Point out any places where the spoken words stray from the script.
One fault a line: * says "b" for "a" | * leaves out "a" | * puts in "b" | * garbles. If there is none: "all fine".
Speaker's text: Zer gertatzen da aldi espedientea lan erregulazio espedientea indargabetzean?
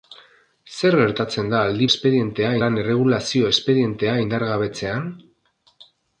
all fine